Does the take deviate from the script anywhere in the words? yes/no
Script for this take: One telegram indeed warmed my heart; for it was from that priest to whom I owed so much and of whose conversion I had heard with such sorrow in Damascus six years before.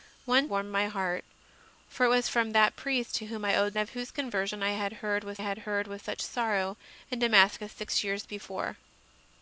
yes